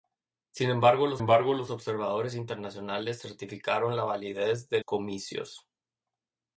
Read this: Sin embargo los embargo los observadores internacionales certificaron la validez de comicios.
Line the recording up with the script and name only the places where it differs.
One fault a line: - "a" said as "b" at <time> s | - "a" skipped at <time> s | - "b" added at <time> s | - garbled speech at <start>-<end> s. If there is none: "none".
none